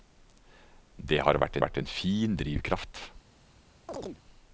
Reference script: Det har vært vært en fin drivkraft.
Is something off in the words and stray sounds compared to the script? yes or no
yes